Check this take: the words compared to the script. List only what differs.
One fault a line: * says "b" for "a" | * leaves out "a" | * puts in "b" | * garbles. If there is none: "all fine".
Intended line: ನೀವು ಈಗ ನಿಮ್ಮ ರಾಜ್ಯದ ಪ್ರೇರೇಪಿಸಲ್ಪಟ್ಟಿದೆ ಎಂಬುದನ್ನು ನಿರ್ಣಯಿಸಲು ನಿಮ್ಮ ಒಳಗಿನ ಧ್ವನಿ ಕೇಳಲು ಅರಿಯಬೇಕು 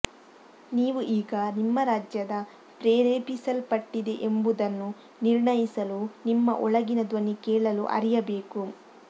all fine